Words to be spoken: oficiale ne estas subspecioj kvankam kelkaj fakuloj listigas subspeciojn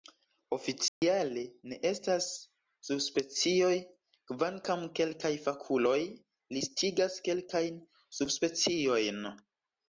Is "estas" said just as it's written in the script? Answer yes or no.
yes